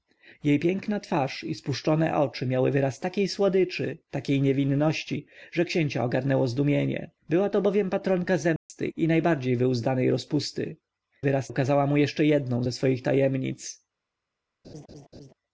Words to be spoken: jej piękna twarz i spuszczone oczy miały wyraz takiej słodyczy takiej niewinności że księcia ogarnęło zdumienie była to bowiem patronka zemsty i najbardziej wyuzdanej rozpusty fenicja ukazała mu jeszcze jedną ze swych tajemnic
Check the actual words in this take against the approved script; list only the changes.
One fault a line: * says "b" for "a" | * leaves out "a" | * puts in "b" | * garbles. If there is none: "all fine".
* says "wyraz" for "fenicja"